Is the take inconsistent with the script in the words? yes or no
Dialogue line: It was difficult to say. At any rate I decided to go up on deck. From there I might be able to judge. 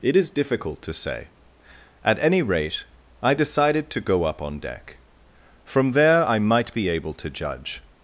yes